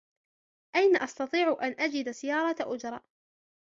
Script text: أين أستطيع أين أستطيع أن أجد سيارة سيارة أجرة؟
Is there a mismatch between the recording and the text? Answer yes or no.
yes